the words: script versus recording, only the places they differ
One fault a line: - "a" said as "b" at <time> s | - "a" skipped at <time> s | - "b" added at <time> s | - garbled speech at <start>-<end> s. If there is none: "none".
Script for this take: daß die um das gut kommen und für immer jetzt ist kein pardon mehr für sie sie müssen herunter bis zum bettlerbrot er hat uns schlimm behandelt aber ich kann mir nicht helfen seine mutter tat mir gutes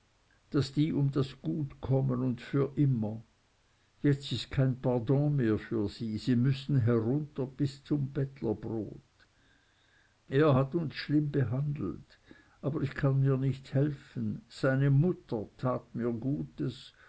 none